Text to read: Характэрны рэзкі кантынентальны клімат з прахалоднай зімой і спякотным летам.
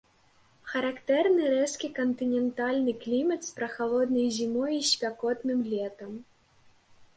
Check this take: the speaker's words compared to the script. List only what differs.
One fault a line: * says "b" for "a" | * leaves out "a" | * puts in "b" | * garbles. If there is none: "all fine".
all fine